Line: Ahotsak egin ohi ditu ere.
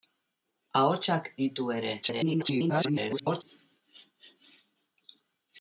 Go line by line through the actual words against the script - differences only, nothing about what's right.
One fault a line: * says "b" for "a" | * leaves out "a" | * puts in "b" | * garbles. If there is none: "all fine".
* leaves out "egin ohi"
* garbles